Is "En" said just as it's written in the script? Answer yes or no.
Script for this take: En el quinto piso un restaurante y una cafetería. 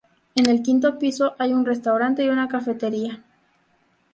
yes